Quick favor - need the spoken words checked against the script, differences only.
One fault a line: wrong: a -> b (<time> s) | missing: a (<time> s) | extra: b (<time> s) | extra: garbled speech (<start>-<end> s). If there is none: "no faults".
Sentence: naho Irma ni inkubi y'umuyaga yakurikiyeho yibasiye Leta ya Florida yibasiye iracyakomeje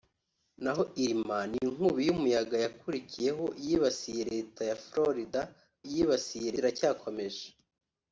no faults